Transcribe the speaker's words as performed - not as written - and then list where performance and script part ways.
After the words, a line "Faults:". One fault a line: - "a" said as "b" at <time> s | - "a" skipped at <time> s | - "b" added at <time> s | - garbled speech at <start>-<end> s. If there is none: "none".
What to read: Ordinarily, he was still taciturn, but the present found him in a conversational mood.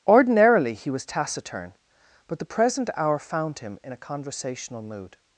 Ordinarily, he was taciturn, but the present hour found him in a conversational mood.
Faults:
- "still" skipped at 1.1 s
- "hour" added at 3.0 s